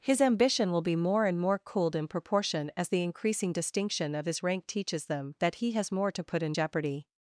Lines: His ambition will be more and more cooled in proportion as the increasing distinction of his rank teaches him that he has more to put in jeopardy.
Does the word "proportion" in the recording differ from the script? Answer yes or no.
no